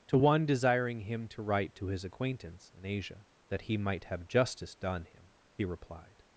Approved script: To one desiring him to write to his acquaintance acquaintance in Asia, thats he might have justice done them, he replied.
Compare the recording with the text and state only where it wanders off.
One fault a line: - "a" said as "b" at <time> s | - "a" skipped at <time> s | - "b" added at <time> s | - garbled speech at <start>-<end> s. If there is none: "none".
- "acquaintance" skipped at 2.7 s
- "thats" said as "that" at 3.5 s
- "them" said as "him" at 5.0 s